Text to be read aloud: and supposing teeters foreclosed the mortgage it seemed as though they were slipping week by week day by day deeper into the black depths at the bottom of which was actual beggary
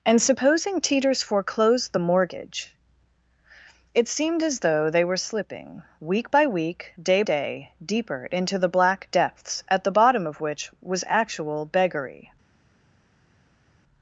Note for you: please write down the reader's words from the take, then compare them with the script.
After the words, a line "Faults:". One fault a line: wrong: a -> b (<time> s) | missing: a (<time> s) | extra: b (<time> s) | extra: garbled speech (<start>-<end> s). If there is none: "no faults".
and supposing teeters foreclosed the mortgage it seemed as though they were slipping week by week day day deeper into the black depths at the bottom of which was actual beggary
Faults:
missing: by (7.2 s)